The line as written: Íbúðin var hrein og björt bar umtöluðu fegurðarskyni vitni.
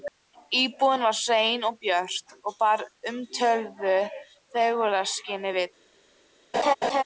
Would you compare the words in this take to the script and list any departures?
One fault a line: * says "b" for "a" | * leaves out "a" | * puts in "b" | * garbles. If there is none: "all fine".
* puts in "og"